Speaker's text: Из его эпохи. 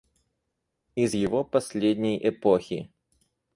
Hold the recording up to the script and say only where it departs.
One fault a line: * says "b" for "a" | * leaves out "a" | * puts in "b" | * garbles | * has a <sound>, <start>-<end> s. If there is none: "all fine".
* puts in "последней"